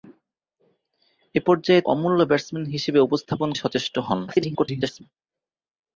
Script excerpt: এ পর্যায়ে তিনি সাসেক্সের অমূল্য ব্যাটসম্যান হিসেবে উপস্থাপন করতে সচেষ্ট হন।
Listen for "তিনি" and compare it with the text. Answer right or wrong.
wrong